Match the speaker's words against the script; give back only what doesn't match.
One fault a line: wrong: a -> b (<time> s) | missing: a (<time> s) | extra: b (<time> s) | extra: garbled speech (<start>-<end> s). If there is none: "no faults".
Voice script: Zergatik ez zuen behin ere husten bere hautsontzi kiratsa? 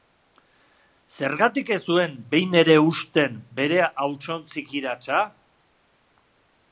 no faults